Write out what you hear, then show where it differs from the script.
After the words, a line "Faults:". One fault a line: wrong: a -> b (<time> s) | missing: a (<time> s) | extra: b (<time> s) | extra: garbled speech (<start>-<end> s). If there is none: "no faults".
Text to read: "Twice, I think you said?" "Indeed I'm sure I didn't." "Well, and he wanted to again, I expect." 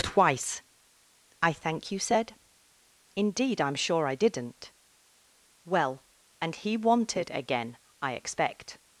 "Twice, I thank you said?" "Indeed I'm sure I didn't." "Well, and he wanted again, I expect."
Faults:
wrong: think -> thank (1.5 s)
missing: to (7.3 s)